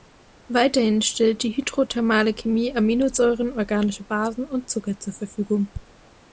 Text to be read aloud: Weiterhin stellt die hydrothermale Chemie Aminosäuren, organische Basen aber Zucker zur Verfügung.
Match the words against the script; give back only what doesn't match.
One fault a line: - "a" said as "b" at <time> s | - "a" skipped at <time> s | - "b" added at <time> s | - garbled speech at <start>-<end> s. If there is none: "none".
- "aber" said as "und" at 4.5 s